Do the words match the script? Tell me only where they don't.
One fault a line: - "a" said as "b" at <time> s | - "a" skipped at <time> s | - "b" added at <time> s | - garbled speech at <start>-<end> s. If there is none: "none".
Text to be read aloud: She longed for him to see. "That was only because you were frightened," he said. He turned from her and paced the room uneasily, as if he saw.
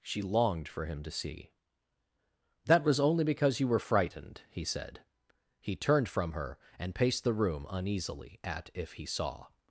- "as" said as "at" at 8.4 s